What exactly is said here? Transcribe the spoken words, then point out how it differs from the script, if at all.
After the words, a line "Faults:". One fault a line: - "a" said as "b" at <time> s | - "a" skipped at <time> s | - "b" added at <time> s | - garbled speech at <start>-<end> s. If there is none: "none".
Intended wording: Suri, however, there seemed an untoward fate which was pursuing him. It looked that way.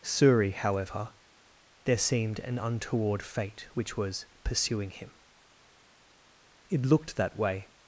Suri, however, there seemed an untoward fate which was pursuing him. It looked that way.
Faults:
none